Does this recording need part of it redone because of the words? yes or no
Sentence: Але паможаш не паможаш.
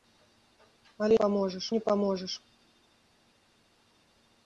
no